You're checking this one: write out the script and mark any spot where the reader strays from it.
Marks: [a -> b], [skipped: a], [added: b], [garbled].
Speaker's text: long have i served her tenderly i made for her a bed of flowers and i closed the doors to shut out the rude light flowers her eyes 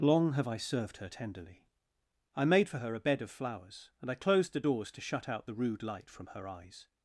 long have i served her tenderly i made for her a bed of flowers and i closed the doors to shut out the rude light [flowers -> from] her eyes